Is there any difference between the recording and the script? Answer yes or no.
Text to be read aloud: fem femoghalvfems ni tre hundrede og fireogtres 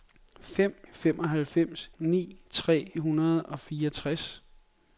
no